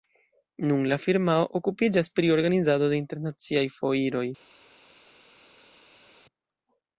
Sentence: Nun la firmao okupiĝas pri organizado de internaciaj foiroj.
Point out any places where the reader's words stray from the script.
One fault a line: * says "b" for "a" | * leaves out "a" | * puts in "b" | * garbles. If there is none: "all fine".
all fine